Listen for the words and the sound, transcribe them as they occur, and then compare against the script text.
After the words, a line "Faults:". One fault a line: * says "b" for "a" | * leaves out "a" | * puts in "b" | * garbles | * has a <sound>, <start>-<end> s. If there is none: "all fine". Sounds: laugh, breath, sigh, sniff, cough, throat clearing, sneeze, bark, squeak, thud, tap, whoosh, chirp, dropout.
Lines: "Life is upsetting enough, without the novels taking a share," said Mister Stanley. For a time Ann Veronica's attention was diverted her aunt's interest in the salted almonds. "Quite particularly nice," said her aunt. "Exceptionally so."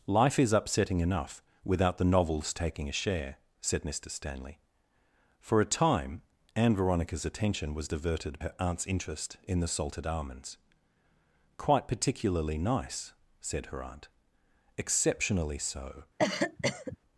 "Life is upsetting enough, without the novels taking a share," said Mister Stanley. For a time Ann Veronica's attention was diverted her aunt's interest in the salted almonds. "Quite particularly nice," said her aunt. "Exceptionally so."
Faults:
* has a cough, 16.2-17.0 s